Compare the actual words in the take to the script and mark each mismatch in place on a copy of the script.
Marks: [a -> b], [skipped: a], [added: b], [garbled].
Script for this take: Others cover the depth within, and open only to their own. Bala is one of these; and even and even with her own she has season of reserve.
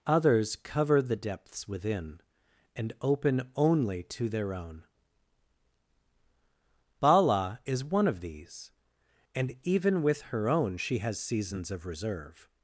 Others cover the [depth -> depths] within, and open only to their own. Bala is one of these; and even [skipped: and even] with her own she has [season -> seasons] of reserve.